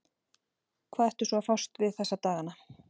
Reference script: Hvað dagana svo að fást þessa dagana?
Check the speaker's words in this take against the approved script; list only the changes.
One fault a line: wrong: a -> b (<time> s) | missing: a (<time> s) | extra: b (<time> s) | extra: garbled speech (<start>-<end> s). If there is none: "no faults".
wrong: dagana -> ertu (1.1 s)
extra: við (1.9 s)